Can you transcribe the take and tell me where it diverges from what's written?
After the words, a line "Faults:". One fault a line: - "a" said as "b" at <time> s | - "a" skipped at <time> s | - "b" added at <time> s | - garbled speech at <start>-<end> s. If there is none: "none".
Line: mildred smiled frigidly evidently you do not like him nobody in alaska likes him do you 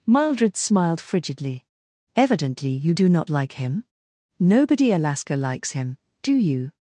mildred smiled frigidly evidently you do not like him nobody alaska likes him do you
Faults:
- "in" skipped at 4.9 s